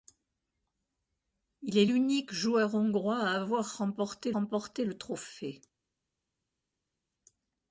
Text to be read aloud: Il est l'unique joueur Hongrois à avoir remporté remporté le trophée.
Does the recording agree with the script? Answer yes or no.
yes